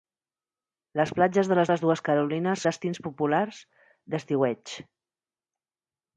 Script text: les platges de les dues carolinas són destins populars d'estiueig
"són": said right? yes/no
no